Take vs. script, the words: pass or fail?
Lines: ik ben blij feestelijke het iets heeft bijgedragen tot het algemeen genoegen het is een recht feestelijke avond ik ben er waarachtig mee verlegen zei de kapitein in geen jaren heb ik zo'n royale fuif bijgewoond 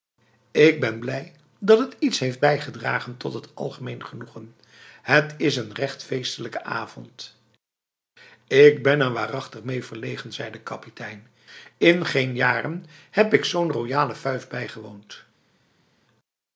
fail